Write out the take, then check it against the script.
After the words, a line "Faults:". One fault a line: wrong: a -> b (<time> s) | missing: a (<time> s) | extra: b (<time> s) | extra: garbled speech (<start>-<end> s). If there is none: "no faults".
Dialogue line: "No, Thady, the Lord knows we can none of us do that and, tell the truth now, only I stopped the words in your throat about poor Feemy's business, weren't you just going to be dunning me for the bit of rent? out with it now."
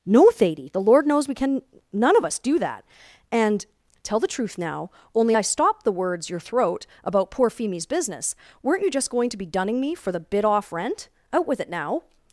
"No, Thady, the Lord knows we can none of us do that and, tell the truth now, only I stopped the words your throat about poor Feemy's business, weren't you just going to be dunning me for the bit off rent? out with it now."
Faults:
missing: in (6.3 s)
wrong: of -> off (10.4 s)